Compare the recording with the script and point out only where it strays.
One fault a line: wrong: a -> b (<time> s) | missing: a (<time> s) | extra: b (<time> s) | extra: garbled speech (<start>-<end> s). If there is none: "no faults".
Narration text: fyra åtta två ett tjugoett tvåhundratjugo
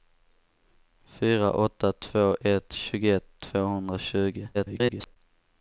extra: garbled speech (4.5-5.2 s)